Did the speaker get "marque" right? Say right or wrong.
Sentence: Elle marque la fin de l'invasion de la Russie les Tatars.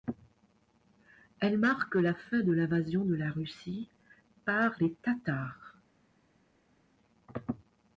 right